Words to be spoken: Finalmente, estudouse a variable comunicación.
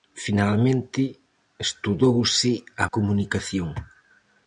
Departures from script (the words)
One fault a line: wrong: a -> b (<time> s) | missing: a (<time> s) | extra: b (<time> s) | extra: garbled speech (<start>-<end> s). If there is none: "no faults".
missing: variable (2.9 s)